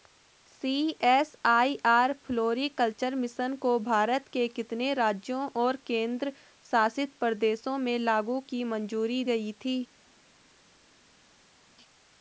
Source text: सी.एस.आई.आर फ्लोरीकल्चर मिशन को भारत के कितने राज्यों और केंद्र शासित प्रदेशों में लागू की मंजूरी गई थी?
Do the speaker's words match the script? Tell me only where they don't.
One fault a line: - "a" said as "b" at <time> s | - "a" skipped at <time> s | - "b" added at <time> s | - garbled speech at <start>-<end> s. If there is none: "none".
none